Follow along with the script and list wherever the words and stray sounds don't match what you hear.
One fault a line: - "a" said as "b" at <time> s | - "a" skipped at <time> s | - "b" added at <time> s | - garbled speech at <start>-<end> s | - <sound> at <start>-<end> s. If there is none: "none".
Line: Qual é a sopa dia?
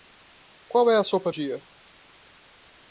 none